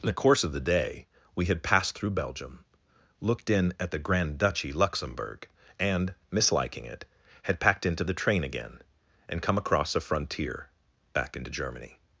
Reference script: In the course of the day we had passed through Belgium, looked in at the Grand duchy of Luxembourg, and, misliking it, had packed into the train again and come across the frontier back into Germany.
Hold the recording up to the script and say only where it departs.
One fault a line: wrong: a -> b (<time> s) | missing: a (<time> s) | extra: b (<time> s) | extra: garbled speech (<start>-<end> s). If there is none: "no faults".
missing: of (4.7 s)
wrong: the -> a (9.9 s)